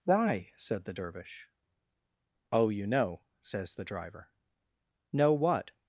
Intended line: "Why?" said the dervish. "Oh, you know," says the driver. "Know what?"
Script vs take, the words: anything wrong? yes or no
no